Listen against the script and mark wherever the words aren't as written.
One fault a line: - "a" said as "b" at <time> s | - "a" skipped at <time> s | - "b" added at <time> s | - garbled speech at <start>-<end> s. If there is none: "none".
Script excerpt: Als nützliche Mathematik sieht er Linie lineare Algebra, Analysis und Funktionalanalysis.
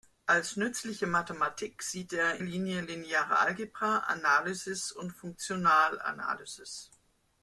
none